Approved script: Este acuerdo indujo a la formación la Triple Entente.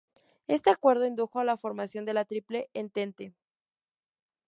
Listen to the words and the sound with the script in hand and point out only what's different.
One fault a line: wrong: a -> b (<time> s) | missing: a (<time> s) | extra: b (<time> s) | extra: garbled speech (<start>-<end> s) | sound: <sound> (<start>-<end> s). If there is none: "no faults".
extra: de (2.0 s)